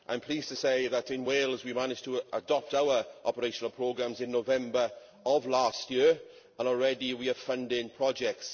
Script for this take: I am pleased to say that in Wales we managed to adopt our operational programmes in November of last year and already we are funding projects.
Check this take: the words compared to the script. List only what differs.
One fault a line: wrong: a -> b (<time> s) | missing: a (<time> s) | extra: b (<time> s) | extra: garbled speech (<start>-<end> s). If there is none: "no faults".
no faults